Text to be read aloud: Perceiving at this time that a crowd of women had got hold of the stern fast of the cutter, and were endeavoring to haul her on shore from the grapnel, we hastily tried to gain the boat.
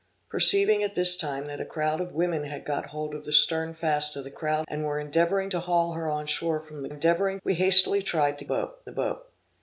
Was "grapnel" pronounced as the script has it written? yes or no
no